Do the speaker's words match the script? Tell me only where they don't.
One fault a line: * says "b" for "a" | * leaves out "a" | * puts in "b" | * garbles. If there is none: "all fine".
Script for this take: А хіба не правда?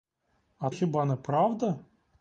all fine